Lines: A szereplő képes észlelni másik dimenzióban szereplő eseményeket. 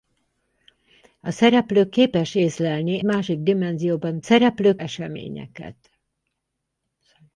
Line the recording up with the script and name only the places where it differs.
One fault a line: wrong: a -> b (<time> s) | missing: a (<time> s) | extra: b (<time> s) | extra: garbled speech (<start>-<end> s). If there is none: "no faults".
no faults